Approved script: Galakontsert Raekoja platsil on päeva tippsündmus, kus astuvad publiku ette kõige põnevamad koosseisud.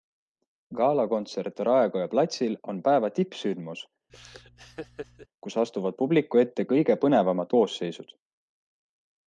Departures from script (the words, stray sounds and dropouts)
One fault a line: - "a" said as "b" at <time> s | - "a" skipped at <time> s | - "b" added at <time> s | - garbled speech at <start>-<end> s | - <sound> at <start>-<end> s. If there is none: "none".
- laugh at 4.1-5.3 s